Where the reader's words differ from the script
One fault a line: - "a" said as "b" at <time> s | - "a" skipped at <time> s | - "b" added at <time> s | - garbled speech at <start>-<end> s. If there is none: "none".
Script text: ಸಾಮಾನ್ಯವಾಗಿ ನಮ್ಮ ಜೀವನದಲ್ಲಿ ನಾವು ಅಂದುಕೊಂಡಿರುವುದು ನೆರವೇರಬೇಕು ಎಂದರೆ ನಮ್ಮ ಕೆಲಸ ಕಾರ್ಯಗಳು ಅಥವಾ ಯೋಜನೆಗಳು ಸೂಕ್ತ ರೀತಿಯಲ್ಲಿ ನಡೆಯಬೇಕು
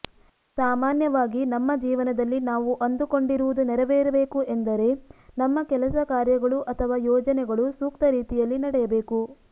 none